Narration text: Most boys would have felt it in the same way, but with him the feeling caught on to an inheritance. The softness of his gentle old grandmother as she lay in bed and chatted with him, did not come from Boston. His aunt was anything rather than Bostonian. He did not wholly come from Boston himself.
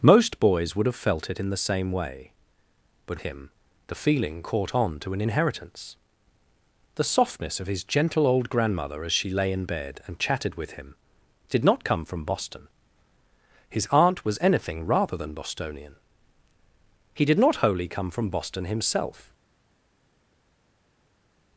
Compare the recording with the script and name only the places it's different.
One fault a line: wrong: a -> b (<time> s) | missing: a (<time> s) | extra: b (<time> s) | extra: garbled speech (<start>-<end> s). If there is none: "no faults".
missing: with (3.2 s)